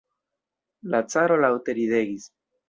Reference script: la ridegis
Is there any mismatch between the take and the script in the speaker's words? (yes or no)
yes